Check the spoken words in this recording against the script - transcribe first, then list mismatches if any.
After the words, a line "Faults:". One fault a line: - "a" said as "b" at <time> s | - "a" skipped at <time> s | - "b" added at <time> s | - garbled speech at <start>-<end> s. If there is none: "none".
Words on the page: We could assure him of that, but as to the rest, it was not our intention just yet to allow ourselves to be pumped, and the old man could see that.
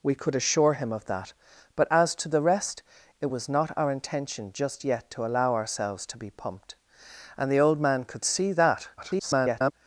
We could assure him of that, but as to the rest, it was not our intention just yet to allow ourselves to be pumped, and the old man could see that. [garbled]
Faults:
- garbled speech at 9.0-9.7 s